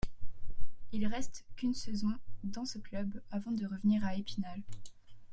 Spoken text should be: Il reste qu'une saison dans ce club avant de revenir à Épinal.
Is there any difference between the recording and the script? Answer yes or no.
no